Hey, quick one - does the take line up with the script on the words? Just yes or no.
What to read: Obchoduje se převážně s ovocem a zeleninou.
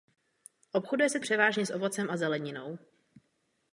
yes